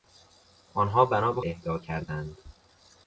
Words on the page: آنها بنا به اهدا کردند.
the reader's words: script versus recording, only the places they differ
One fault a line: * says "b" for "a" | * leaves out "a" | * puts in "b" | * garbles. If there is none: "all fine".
all fine